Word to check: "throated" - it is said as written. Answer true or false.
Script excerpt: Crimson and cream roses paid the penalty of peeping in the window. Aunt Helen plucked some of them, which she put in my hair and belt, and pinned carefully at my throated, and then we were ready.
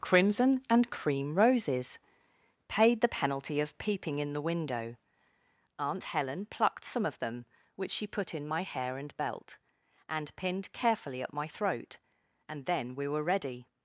false